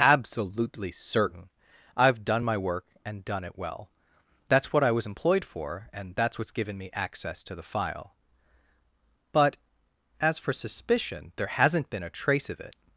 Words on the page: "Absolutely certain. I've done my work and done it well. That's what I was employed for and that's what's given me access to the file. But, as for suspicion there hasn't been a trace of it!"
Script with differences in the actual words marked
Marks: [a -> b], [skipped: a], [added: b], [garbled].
"Absolutely certain. I've done my work and done it well. That's what I was employed for and that's what's given me access to the file. But, as for suspicion there hasn't been a trace of it!"